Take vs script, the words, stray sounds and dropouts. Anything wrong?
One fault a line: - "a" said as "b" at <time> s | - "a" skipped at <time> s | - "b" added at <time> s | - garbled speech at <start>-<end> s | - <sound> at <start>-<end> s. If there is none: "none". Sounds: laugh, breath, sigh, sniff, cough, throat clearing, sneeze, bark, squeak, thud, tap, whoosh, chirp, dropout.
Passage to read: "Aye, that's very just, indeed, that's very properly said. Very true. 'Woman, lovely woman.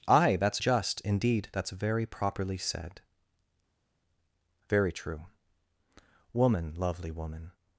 - "very" skipped at 0.6 s